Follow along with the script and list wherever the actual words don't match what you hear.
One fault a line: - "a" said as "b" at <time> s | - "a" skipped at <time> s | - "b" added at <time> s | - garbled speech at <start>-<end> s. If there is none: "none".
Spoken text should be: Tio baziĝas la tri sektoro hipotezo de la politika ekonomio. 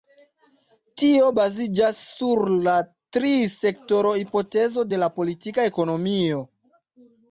- "sur" added at 2.2 s